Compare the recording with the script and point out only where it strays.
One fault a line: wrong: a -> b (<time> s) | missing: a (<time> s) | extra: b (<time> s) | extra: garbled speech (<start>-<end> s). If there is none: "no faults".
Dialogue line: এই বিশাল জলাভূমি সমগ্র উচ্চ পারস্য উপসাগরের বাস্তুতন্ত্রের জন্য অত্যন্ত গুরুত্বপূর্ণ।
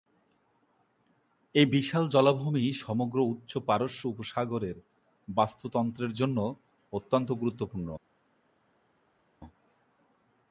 no faults